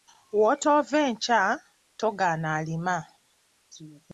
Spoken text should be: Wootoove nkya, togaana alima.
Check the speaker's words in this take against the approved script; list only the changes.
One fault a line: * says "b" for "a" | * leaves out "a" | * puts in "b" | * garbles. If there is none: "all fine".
all fine